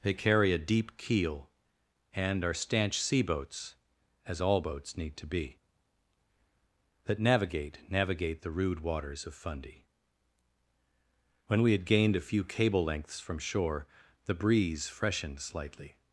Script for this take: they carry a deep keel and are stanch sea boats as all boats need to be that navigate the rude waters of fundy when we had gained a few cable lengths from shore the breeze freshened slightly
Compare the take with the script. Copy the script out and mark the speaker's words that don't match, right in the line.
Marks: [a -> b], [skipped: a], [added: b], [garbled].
they carry a deep keel and are stanch sea boats as all boats need to be that navigate [added: navigate] the rude waters of fundy when we had gained a few cable lengths from shore the breeze freshened slightly